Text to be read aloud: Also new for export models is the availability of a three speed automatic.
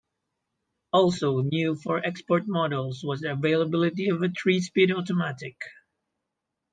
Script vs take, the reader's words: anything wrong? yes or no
yes